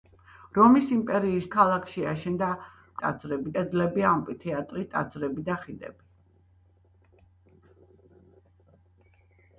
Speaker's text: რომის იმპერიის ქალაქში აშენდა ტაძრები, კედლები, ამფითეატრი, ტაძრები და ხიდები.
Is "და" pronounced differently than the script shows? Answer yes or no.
no